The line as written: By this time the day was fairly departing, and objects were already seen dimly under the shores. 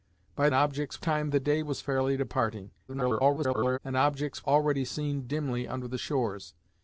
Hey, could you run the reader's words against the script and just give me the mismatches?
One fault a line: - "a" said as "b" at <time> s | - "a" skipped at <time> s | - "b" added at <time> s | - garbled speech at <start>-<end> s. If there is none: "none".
- "this" said as "objects" at 0.5 s
- garbled speech at 2.9-3.8 s
- "were" skipped at 4.5 s